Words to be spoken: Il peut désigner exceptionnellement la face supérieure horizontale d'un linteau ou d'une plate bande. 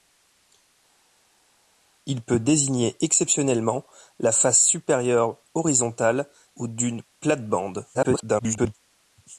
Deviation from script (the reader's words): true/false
true